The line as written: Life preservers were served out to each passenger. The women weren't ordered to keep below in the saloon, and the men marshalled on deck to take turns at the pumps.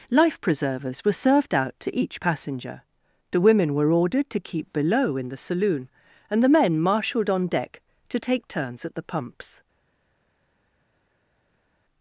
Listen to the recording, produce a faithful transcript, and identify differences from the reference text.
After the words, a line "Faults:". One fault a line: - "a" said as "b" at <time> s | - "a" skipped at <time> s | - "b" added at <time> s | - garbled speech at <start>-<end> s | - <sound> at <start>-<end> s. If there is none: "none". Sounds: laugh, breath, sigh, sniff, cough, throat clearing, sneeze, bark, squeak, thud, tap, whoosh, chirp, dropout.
Life preservers were served out to each passenger. The women were ordered to keep below in the saloon, and the men marshalled on deck to take turns at the pumps.
Faults:
- "weren't" said as "were" at 3.7 s